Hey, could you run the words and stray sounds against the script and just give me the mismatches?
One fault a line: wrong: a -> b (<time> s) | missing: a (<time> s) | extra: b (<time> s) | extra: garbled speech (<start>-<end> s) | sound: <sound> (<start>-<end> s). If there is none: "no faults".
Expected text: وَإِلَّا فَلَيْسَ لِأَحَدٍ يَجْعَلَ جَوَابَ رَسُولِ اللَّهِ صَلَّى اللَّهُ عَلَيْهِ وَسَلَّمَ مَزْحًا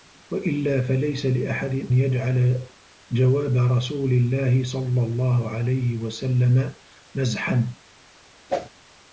sound: whoosh (8.5-8.7 s)